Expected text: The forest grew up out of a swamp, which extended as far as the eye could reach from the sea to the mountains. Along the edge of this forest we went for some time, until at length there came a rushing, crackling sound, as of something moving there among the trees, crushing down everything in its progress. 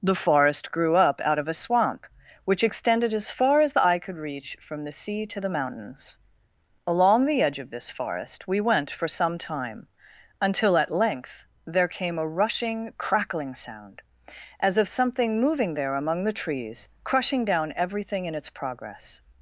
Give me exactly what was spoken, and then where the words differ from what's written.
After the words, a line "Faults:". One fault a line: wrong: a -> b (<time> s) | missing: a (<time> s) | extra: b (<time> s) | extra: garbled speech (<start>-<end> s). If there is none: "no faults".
The forest grew up out of a swamp, which extended as far as the eye could reach from the sea to the mountains. Along the edge of this forest we went for some time, until at length there came a rushing, crackling sound, as of something moving there among the trees, crushing down everything in its progress.
Faults:
no faults